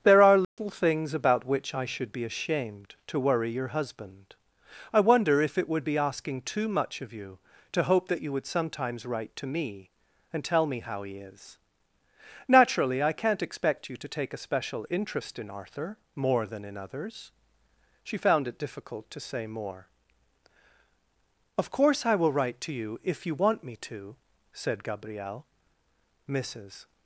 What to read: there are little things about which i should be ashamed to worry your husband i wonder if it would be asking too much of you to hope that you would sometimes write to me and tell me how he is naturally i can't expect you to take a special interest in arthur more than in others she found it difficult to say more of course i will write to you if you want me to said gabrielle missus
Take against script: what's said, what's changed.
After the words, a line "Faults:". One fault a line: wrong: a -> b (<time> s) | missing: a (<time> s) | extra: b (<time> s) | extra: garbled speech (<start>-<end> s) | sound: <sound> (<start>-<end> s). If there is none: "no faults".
there are little things about which i should be ashamed to worry your husband i wonder if it would be asking too much of you to hope that you would sometimes write to me and tell me how he is naturally i can't expect you to take a special interest in arthur more than in others she found it difficult to say more of course i will write to you if you want me to said gabrielle missus
Faults:
sound: dropout (0.4-0.6 s)